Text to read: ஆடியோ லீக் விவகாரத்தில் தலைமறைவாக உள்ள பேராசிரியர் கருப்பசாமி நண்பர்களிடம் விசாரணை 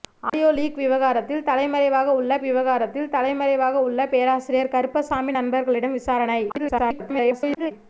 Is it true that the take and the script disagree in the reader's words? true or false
true